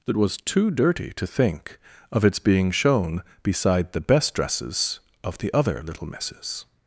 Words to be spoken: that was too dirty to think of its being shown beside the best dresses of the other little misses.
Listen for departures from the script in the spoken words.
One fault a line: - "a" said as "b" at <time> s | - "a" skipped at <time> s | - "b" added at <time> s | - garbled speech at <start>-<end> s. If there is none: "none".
none